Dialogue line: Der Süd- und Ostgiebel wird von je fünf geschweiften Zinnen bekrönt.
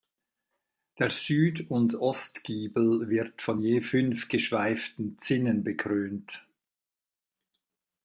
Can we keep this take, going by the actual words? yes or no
yes